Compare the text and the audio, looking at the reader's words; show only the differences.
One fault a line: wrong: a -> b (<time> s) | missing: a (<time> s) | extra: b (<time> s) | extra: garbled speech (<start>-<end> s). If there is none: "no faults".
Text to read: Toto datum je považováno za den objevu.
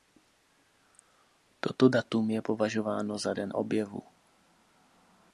no faults